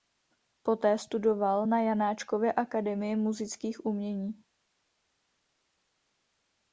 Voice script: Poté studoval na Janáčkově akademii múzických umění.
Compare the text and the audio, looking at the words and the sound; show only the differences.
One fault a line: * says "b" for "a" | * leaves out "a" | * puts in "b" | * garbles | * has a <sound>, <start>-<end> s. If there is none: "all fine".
all fine